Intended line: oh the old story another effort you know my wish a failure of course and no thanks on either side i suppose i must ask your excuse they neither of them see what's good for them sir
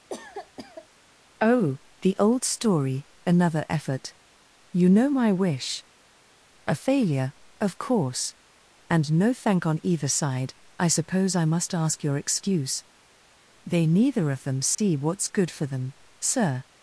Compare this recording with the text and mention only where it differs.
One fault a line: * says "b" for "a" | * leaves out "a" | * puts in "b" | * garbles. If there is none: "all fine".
* says "thank" for "thanks"